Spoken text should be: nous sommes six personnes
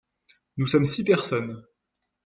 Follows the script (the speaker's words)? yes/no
yes